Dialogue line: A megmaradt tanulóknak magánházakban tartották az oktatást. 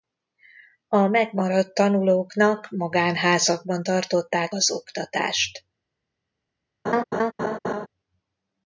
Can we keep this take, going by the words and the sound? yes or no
no